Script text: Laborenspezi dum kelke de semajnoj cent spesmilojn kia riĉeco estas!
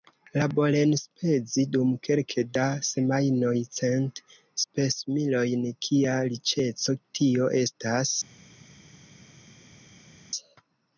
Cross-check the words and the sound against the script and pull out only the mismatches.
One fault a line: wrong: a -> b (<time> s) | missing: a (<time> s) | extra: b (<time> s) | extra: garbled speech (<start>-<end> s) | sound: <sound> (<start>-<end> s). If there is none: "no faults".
wrong: de -> da (2.6 s)
extra: tio (7.2 s)